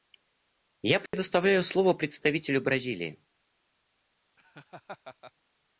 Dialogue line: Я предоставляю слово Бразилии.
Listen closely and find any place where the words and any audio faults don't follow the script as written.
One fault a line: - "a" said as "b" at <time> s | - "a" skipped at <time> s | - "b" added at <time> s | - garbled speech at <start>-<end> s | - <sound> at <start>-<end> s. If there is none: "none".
- dropout at 1.1-1.1 s
- "представителю" added at 1.9 s
- laugh at 4.4-5.3 s